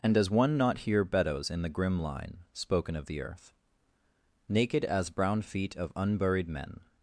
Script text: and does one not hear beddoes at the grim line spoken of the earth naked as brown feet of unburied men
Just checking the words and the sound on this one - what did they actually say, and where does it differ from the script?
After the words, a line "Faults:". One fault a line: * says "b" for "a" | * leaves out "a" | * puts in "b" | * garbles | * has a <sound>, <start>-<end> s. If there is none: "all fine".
and does one not hear beddoes in the grim line spoken of the earth naked as brown feet of unburied men
Faults:
* says "in" for "at"